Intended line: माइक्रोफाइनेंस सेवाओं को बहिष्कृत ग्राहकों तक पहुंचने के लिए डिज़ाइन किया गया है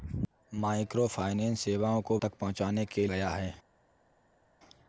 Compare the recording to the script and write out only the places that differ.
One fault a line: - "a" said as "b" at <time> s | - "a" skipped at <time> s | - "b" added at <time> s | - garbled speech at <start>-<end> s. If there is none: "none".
- "बहिष्कृत ग्राहकों" skipped at 2.2 s
- "लिए डिज़ाइन किया" skipped at 3.1 s